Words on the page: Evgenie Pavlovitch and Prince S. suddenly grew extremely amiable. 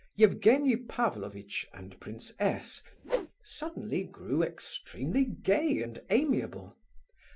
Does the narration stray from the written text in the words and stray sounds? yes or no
yes